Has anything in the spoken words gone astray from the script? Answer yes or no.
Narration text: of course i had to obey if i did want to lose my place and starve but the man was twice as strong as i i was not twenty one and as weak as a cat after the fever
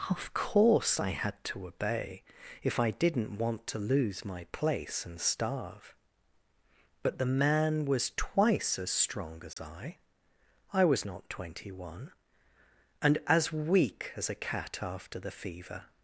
yes